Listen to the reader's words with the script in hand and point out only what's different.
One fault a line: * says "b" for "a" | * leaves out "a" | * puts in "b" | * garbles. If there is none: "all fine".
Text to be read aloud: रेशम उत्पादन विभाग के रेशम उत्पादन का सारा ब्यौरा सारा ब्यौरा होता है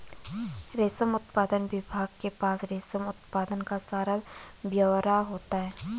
* puts in "पास"
* leaves out "सारा ब्यौरा"